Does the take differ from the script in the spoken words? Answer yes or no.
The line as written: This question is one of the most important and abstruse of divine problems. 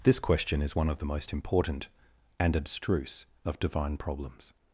no